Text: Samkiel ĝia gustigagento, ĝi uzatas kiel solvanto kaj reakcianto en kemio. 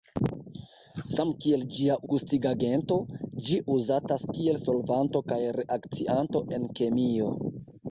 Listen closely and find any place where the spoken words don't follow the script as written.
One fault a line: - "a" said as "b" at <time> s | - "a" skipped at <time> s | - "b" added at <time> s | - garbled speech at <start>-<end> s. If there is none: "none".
none